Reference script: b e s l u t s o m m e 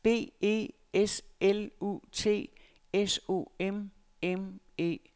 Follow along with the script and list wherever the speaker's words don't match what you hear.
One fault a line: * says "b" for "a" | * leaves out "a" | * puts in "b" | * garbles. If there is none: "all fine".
all fine